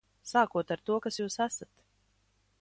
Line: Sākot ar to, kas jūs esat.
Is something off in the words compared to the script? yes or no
no